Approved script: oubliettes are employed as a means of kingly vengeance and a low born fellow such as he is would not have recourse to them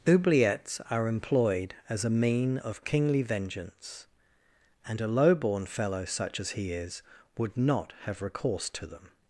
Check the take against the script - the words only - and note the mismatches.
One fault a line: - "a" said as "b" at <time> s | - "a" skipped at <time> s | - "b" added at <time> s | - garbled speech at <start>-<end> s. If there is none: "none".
- "means" said as "mean" at 2.1 s